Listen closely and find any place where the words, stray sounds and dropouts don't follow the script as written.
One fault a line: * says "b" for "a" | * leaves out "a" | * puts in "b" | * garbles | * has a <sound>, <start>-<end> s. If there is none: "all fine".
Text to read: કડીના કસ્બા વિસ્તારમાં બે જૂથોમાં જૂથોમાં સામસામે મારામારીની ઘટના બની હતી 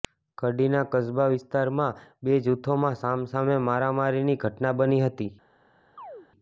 * leaves out "જૂથોમાં"
* has a chirp, 6.0-6.3 s